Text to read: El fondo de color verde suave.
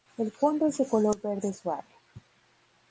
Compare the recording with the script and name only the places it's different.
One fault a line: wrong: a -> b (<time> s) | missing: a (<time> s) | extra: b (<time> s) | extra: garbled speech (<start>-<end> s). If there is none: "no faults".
extra: es (0.7 s)